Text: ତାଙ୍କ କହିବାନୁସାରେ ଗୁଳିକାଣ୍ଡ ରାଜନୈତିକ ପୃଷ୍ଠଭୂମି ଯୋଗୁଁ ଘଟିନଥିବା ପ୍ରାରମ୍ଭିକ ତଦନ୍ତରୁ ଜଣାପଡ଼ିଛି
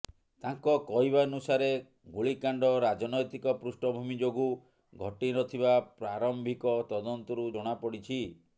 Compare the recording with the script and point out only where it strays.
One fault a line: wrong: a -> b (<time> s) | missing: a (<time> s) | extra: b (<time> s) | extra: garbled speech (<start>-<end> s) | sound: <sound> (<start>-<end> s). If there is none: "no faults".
no faults